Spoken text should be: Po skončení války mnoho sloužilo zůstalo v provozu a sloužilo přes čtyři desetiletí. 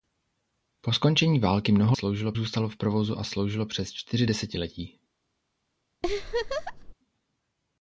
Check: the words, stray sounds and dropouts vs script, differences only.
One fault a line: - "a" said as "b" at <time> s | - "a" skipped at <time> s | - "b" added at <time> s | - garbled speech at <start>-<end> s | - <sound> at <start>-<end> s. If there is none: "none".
- laugh at 6.0-6.9 s